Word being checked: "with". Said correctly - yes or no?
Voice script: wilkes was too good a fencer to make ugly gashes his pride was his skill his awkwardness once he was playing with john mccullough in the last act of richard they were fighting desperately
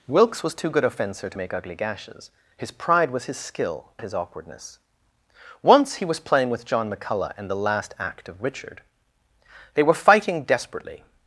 yes